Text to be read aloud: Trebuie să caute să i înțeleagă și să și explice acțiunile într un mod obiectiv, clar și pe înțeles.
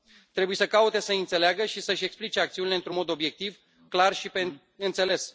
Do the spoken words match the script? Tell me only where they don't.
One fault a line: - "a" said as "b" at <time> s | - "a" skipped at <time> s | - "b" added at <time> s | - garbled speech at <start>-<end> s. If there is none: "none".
none